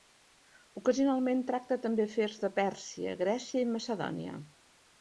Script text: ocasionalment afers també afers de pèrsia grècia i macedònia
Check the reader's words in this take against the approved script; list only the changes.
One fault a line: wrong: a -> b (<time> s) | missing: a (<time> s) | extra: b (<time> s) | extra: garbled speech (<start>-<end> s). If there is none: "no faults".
wrong: afers -> tracta (1.5 s)